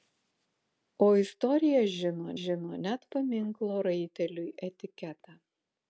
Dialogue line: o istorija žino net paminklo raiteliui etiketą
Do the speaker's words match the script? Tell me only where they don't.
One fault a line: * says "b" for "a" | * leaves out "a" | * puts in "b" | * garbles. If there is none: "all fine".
* puts in "žino"